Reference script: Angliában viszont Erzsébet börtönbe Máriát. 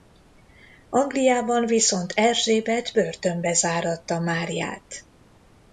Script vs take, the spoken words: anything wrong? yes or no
yes